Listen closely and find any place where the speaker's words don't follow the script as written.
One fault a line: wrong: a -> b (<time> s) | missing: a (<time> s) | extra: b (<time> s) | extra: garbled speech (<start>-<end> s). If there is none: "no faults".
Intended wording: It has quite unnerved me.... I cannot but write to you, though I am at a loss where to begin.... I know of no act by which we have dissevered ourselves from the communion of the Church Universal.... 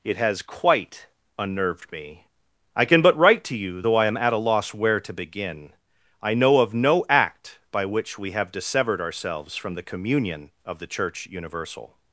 wrong: cannot -> can (2.9 s)